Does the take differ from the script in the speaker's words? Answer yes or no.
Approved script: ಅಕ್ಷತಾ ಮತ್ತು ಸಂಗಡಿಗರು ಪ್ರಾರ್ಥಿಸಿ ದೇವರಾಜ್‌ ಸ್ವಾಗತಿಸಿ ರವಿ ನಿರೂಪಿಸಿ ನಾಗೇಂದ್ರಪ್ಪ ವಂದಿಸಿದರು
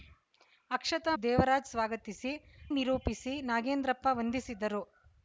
yes